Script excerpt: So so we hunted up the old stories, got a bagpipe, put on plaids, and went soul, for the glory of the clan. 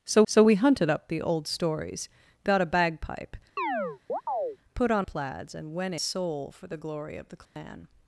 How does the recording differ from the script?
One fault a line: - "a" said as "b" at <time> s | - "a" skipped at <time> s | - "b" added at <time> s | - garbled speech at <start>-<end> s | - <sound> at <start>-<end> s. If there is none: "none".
- chirp at 3.6-4.6 s
- dropout at 7.5-7.6 s